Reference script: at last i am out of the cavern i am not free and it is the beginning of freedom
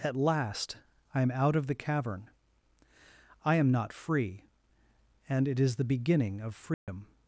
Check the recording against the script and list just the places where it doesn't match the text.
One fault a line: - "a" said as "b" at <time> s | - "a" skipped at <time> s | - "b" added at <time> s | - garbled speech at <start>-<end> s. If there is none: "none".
none